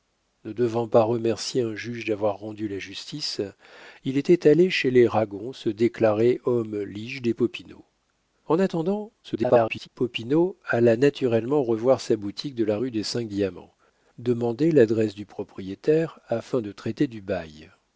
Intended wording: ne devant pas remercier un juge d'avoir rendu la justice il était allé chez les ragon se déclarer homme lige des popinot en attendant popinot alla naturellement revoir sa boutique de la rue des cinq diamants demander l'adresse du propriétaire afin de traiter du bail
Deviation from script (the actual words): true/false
true